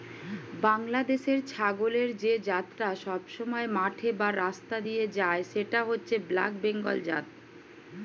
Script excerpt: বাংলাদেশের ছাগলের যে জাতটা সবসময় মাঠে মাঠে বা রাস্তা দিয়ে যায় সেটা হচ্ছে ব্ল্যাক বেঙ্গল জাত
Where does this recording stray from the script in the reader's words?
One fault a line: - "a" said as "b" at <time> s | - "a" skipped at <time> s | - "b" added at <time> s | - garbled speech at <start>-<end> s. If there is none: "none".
- "মাঠে" skipped at 4.1 s